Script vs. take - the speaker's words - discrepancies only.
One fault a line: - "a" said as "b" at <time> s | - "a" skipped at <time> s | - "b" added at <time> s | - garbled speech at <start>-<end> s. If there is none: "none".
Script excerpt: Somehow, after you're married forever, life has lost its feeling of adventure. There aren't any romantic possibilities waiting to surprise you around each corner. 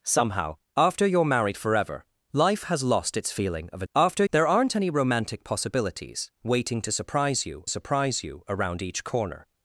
- "adventure" said as "after" at 3.9 s
- "surprise you" added at 7.7 s